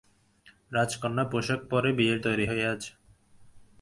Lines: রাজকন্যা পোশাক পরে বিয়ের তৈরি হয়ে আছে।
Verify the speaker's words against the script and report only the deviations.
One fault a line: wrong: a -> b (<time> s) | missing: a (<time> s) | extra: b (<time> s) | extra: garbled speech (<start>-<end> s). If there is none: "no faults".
no faults